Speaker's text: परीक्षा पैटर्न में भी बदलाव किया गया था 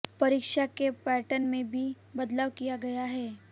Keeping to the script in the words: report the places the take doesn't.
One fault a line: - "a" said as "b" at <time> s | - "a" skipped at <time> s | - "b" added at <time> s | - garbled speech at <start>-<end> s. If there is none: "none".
- "के" added at 0.7 s
- "था" said as "है" at 3.0 s